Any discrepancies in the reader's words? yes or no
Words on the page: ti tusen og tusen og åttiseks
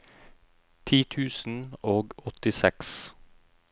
yes